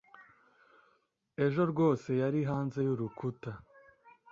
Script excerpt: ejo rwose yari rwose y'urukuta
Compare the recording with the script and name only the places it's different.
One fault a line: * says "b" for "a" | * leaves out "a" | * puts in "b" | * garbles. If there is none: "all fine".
* says "hanze" for "rwose"